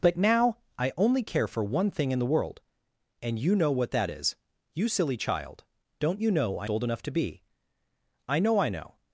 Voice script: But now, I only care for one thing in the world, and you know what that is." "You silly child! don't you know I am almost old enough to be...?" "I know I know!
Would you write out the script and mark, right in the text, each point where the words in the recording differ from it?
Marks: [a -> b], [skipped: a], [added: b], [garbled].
But now, I only care for one thing in the world, and you know what that is." "You silly child! don't you know I [skipped: am almost] old enough to be...?" "I know I know!